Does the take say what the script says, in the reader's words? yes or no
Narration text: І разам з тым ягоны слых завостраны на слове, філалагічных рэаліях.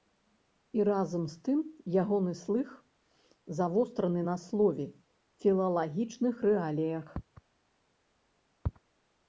yes